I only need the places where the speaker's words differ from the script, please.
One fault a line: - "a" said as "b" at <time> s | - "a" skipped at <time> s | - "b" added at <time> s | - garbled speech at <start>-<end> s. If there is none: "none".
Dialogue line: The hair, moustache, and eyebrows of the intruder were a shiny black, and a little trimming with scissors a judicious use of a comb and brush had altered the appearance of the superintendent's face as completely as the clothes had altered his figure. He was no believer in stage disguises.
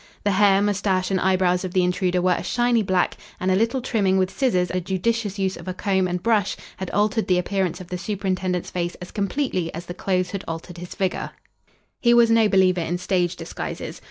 none